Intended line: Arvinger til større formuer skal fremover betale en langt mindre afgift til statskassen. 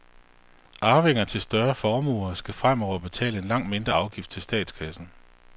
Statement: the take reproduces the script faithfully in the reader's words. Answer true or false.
true